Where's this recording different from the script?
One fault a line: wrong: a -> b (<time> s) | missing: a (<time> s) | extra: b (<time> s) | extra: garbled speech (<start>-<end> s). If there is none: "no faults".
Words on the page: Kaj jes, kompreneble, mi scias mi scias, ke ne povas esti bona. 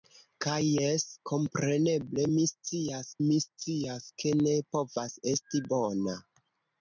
no faults